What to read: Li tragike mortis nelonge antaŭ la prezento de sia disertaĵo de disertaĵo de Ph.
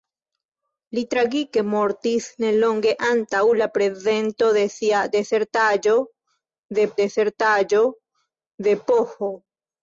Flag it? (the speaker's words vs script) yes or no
no